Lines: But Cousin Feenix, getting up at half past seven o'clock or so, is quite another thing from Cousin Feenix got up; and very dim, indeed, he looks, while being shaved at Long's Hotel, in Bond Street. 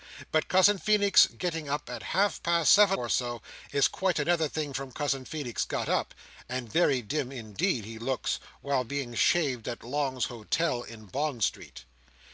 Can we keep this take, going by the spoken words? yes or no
no